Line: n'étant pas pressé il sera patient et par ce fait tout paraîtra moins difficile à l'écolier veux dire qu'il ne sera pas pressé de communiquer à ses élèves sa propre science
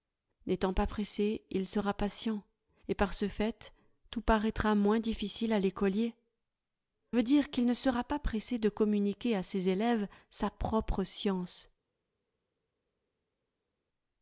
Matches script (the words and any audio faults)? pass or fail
pass